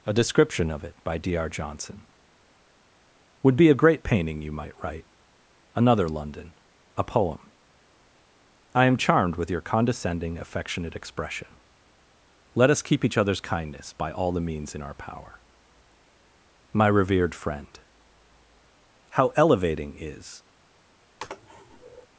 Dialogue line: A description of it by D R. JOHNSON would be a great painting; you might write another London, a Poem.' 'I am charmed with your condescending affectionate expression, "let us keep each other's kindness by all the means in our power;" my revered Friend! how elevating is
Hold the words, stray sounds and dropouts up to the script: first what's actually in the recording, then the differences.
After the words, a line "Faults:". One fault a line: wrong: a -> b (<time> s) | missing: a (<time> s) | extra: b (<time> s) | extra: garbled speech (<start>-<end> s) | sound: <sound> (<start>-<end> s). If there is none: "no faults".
A description of it by D R. JOHNSON would be a great painting; you might write another London, a Poem.' 'I am charmed with your condescending affectionate expression, "let us keep each other's kindness by all the means in our power;" my revered Friend! how elevating is
Faults:
sound: sneeze (21.2-22.1 s)